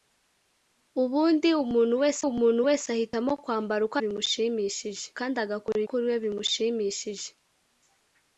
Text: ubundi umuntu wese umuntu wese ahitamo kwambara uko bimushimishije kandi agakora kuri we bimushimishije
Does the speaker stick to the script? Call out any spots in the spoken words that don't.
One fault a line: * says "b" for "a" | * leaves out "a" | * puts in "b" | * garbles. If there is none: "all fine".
all fine